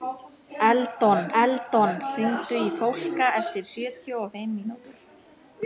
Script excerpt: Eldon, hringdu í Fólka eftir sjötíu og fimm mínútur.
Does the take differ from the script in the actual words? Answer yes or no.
yes